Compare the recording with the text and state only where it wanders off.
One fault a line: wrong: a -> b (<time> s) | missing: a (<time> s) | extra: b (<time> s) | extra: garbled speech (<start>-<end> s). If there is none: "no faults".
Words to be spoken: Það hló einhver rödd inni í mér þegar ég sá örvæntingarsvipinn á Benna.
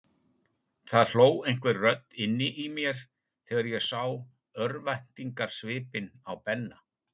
no faults